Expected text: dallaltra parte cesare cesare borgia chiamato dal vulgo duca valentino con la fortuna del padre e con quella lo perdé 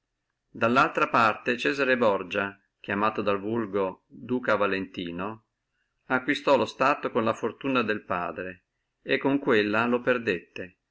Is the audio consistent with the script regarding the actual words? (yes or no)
no